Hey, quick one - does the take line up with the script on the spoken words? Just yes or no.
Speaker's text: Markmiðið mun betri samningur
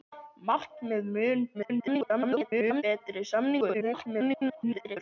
no